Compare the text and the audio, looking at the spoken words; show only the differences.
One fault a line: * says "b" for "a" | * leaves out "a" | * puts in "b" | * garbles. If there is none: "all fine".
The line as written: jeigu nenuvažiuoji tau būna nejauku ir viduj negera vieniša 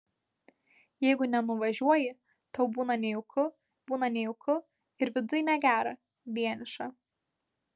* puts in "būna nejauku"